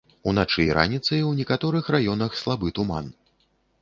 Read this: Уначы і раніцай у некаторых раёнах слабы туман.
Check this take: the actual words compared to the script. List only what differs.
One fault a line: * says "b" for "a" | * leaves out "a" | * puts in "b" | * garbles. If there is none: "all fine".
all fine